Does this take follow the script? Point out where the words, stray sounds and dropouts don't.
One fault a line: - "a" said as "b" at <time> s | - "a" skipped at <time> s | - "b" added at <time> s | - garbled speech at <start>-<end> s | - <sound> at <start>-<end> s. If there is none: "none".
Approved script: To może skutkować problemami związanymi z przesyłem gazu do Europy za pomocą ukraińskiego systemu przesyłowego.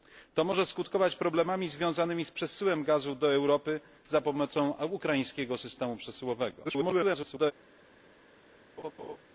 - garbled speech at 6.6-7.5 s
- laugh at 8.8-9.2 s